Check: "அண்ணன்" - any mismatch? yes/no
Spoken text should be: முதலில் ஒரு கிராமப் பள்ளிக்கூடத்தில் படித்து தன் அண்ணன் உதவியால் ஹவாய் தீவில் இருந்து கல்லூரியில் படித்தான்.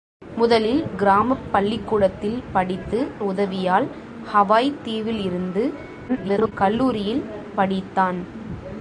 yes